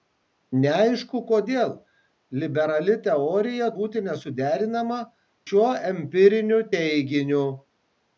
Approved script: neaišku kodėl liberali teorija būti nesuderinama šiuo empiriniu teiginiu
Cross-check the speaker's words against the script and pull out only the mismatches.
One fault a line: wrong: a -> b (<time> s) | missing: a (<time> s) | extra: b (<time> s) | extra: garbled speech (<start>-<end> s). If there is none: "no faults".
no faults